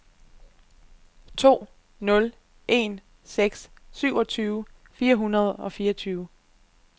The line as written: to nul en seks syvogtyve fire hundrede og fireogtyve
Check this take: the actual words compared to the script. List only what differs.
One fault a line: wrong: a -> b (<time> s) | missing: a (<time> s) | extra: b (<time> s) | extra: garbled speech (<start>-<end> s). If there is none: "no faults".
no faults